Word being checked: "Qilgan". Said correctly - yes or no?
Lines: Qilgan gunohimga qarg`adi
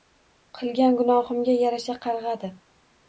yes